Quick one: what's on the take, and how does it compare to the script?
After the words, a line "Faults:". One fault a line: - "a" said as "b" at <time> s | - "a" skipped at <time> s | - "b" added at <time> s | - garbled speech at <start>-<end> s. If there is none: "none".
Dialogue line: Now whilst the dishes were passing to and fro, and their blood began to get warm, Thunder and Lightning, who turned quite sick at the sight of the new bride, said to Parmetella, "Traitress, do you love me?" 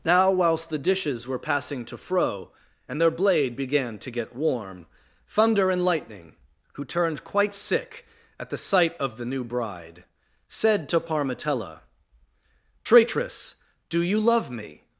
Now whilst the dishes were passing to fro, and their blade began to get warm, Thunder and Lightning, who turned quite sick at the sight of the new bride, said to Parmetella, "Traitress, do you love me?"
Faults:
- "and" skipped at 2.0 s
- "blood" said as "blade" at 3.1 s